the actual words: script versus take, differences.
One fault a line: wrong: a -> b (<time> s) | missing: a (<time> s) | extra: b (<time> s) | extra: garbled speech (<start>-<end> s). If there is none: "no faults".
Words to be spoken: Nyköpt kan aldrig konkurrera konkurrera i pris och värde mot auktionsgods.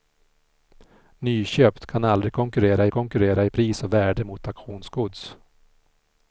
no faults